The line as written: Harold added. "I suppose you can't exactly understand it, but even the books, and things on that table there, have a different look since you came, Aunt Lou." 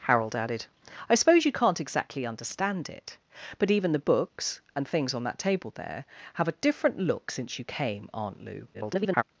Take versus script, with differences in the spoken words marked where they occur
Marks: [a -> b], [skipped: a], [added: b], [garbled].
Harold added. "I suppose you can't exactly understand it, but even the books, and things on that table there, have a different look since you came, Aunt Lou." [garbled]